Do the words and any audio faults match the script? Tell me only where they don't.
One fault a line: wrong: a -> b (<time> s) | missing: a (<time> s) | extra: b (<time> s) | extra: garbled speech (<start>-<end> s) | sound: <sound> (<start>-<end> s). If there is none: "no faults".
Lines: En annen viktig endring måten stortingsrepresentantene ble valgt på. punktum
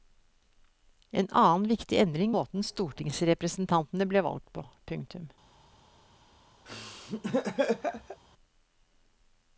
sound: laugh (6.6-8.2 s)